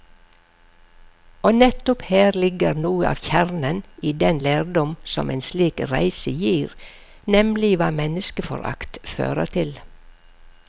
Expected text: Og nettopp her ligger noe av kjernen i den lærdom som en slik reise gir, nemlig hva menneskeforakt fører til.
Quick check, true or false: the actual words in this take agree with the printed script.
true